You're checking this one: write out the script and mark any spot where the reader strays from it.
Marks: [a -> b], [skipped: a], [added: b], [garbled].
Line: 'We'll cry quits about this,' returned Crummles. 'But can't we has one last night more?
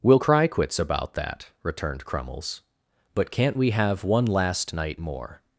'We'll cry quits about [this,' -> that] returned Crummles. 'But can't we [has -> have] one last night more?